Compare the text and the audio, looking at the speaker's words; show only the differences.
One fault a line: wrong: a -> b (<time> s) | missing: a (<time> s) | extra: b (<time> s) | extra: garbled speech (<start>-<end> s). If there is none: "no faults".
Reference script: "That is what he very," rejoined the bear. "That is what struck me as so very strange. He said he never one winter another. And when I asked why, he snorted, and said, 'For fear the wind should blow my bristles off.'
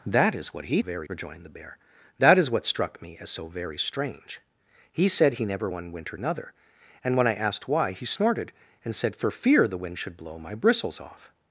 no faults